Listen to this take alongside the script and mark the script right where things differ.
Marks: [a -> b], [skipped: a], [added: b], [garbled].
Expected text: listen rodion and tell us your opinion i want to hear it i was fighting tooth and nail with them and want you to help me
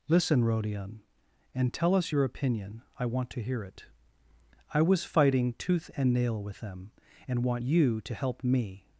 listen rodion and tell us your opinion i want to hear it i was fighting tooth and nail with them and want you to help me